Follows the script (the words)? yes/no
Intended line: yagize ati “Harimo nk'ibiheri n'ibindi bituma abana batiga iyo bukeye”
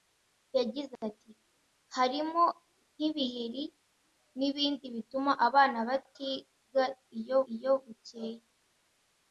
no